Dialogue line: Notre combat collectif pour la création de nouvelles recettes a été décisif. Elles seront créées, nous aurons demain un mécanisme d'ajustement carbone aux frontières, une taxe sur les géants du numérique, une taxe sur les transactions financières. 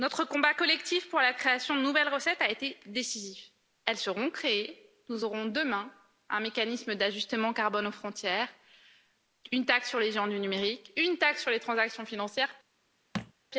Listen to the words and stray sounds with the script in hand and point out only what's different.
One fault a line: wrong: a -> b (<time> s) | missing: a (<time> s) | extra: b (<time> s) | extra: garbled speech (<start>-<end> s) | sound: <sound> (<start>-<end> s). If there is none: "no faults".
sound: thud (13.1-13.3 s)